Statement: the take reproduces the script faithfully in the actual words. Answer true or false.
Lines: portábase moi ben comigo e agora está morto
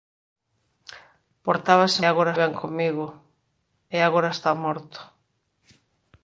false